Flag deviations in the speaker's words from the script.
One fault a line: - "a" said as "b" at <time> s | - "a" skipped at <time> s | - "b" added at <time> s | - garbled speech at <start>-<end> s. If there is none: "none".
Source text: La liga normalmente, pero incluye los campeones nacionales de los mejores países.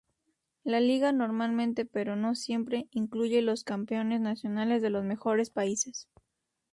- "no siempre" added at 2.1 s